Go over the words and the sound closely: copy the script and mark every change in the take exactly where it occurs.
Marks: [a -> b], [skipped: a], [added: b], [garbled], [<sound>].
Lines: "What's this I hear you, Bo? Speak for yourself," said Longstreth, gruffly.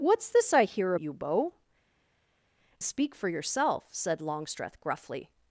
"What's this I hear you, Bo? Speak for yourself," said Longstreth, gruffly.